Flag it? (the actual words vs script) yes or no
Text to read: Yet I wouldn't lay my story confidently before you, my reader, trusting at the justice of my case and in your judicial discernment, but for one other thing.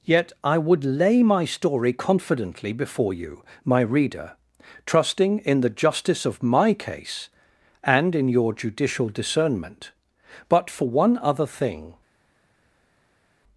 yes